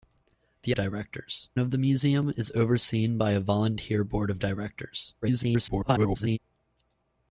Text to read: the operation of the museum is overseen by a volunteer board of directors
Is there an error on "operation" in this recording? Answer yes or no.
yes